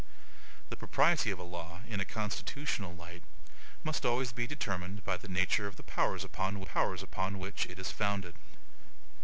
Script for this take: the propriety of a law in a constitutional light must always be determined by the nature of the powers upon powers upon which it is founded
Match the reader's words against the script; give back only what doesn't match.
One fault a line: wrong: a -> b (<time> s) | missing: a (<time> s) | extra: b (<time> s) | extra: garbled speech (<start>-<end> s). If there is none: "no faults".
no faults